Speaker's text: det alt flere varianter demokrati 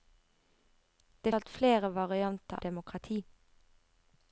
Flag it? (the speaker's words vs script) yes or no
no